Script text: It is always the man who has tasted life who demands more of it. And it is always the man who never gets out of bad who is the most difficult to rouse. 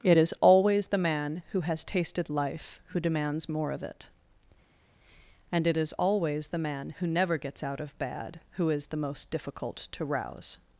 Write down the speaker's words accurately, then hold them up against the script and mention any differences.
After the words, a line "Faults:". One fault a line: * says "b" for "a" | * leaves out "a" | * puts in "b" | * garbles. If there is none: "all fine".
It is always the man who has tasted life who demands more of it. And it is always the man who never gets out of bad who is the most difficult to rouse.
Faults:
all fine